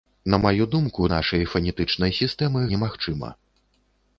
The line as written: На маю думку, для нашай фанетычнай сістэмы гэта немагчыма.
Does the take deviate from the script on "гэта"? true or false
true